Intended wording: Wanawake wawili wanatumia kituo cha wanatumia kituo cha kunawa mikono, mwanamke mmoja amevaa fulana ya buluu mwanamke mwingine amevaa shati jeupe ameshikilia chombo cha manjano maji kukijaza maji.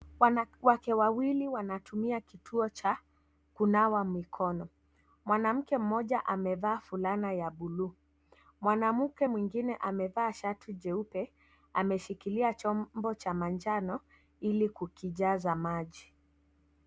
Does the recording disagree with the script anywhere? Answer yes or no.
yes